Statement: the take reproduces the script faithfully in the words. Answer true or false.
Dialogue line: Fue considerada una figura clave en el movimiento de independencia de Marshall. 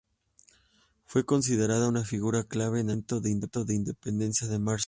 true